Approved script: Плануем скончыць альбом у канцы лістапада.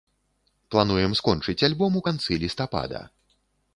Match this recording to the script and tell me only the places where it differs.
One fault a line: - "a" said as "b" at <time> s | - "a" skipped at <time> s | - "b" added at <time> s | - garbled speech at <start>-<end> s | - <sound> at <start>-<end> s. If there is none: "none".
none